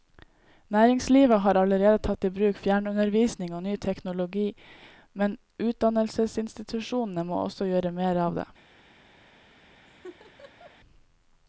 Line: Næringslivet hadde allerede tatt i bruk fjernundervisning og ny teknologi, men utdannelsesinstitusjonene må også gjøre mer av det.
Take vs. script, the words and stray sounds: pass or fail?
fail